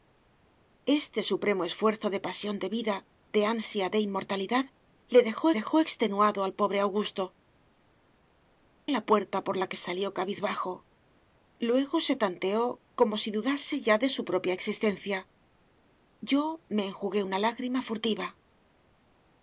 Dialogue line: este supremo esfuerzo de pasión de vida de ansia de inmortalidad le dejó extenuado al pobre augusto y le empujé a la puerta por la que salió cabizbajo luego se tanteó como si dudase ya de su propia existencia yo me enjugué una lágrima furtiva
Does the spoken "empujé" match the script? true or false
false